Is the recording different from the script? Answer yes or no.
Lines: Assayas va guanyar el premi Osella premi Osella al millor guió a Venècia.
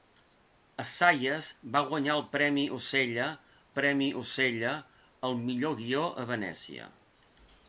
no